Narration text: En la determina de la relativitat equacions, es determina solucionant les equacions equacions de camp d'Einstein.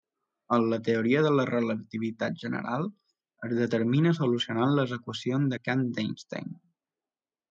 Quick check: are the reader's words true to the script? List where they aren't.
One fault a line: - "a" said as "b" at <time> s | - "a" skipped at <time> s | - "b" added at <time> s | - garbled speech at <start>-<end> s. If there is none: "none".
- "determina" said as "teoria" at 0.8 s
- "equacions" said as "general" at 2.5 s
- "equacions" skipped at 5.5 s